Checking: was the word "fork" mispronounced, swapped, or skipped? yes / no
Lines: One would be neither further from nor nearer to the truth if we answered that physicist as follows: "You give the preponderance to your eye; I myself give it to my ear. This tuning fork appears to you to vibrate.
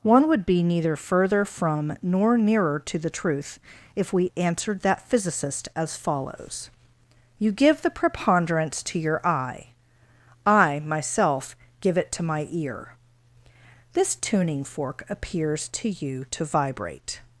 no